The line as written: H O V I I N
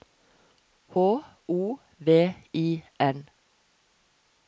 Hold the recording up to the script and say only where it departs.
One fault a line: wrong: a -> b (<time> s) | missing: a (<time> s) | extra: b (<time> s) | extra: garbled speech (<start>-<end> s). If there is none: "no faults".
missing: I (2.8 s)